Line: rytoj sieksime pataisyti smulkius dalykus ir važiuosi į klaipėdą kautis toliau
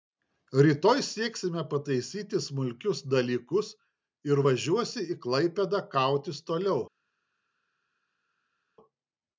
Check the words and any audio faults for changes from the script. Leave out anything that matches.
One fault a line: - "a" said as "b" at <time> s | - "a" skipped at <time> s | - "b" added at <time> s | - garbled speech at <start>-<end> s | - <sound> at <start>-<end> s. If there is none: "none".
none